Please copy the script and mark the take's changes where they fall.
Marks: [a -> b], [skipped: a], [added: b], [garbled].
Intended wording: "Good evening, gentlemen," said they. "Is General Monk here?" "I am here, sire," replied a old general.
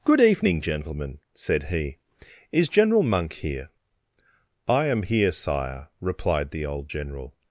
"Good evening, gentlemen," said [they. -> he] "Is General Monk here?" "I am here, sire," replied [a -> the] old general.